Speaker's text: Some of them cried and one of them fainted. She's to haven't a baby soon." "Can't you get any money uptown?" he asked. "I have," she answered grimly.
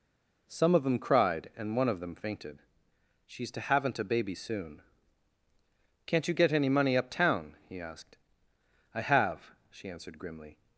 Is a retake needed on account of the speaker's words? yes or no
no